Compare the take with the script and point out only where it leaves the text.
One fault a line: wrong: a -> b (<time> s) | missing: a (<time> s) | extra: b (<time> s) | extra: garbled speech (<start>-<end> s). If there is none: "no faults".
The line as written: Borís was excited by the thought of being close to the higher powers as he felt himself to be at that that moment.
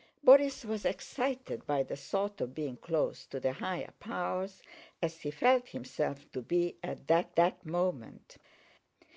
no faults